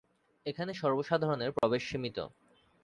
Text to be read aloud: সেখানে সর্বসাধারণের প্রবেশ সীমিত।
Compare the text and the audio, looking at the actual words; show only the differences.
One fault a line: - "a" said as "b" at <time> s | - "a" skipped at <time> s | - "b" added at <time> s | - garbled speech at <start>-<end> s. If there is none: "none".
- "সেখানে" said as "এখানে" at 0.5 s